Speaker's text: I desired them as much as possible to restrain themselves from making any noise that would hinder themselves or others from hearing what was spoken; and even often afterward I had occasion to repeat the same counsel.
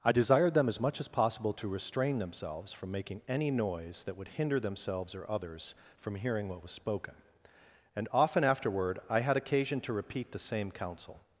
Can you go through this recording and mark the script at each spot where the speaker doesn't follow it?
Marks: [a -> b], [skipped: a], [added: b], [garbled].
I desired them as much as possible to restrain themselves from making any noise that would hinder themselves or others from hearing what was spoken; and [skipped: even] often afterward I had occasion to repeat the same counsel.